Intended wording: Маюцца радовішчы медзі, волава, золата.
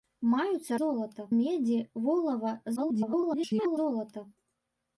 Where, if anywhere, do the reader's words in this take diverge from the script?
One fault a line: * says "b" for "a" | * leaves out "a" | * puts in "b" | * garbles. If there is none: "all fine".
* says "золата" for "радовішчы"
* garbles